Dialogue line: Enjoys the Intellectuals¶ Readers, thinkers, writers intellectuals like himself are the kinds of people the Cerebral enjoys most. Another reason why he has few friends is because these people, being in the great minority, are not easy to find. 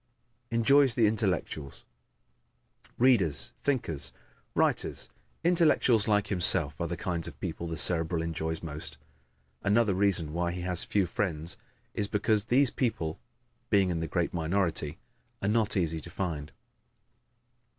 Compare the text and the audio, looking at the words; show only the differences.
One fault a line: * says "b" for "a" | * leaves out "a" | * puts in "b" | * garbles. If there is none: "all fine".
all fine